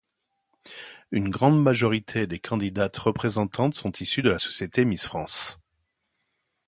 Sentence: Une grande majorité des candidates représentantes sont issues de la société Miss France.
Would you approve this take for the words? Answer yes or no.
yes